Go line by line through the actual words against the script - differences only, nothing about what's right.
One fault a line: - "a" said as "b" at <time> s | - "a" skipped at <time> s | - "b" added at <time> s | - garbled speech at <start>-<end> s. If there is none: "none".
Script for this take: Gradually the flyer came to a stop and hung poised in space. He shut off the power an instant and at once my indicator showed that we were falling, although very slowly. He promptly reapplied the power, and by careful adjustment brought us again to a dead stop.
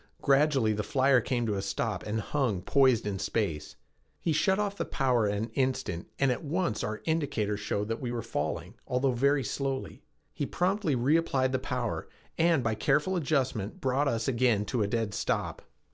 - "my" said as "our" at 6.8 s